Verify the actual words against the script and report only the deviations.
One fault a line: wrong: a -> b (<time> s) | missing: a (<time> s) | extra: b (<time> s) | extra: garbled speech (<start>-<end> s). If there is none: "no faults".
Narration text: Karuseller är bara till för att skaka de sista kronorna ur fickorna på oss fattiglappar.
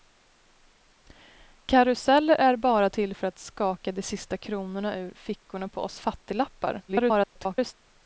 extra: garbled speech (6.9-7.7 s)